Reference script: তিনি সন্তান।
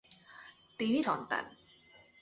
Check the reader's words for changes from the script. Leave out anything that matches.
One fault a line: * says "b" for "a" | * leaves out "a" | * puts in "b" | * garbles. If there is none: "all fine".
all fine